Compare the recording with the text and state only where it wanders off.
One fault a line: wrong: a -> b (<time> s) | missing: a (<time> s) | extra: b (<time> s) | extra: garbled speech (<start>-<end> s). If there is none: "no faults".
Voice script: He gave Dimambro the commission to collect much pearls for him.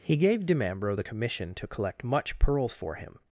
no faults